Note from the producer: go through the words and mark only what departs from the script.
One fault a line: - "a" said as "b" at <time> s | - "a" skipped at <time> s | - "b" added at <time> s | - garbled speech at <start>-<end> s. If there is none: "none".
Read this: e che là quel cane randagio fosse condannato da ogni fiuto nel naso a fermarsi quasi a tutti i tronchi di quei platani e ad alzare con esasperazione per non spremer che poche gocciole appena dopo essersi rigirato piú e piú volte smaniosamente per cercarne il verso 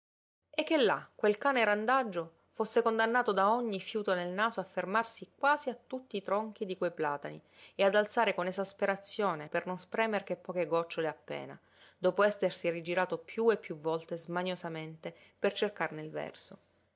none